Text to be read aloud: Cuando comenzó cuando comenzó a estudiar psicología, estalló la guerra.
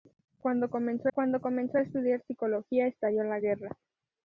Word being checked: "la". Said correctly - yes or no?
yes